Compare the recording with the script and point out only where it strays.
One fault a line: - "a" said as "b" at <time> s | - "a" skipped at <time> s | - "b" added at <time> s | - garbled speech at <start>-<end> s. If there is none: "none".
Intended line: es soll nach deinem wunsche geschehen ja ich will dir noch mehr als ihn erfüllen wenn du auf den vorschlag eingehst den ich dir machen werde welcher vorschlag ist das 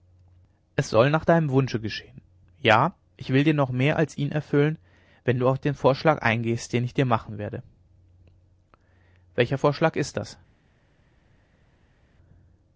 none